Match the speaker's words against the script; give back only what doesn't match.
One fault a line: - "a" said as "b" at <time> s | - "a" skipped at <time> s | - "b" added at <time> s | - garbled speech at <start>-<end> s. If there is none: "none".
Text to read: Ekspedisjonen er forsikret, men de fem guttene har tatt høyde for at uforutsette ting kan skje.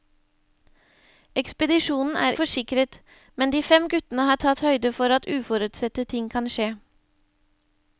none